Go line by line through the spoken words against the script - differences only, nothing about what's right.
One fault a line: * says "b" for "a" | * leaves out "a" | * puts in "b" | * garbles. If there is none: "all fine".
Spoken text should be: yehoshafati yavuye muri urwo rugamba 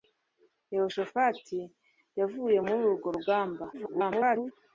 * garbles